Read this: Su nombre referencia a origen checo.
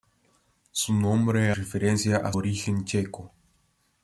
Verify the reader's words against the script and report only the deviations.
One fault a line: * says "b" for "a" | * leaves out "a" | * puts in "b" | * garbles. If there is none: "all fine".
all fine